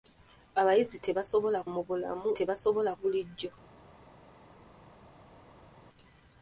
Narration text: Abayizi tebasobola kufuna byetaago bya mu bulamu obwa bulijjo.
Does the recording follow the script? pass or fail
fail